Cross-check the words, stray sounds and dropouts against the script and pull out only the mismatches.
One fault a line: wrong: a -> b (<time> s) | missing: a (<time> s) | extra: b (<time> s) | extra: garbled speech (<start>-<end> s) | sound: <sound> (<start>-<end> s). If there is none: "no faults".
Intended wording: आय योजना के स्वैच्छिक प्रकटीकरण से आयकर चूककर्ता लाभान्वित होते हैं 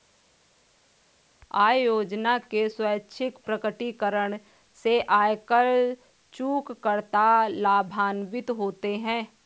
no faults